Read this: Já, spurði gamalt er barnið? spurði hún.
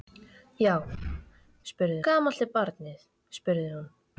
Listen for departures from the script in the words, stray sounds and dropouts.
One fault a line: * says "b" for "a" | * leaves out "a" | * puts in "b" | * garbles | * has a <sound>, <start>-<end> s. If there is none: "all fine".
all fine